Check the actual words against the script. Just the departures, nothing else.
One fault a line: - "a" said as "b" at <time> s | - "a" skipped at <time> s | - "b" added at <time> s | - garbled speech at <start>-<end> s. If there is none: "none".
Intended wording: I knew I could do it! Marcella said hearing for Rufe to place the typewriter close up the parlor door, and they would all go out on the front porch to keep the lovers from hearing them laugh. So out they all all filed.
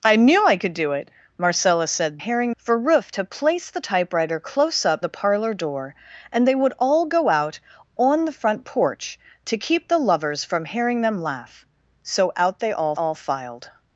none